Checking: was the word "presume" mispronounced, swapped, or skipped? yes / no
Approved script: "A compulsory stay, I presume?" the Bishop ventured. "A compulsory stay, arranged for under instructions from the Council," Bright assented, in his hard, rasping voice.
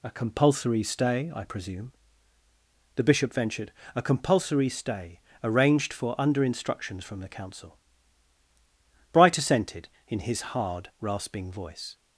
no